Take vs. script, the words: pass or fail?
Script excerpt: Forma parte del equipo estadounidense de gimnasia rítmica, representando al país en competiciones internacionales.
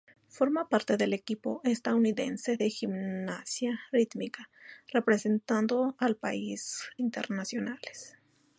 fail